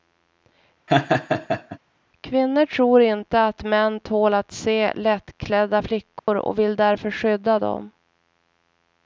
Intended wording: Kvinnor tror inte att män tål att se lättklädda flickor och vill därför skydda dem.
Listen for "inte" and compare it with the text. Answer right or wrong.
right